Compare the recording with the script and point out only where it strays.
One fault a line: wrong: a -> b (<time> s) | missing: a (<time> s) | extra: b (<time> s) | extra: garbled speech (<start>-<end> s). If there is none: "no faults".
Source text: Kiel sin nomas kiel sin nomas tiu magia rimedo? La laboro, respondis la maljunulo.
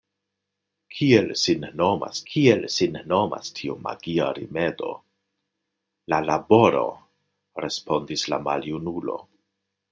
no faults